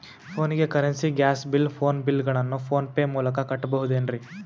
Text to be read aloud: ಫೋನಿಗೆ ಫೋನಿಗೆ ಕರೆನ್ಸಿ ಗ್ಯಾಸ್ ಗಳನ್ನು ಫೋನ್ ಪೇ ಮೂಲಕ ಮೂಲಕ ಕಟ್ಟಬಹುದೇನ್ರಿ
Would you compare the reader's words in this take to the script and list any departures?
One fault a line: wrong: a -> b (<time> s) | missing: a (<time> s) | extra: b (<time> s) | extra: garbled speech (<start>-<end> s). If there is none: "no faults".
missing: ಫೋನಿಗೆ (0.7 s)
extra: ಬಿಲ್ ಫೋನ್ ಬಿಲ್ (1.5 s)
missing: ಮೂಲಕ (3.4 s)